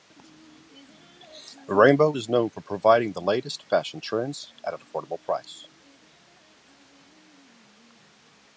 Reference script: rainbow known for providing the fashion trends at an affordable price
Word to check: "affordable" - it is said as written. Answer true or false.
true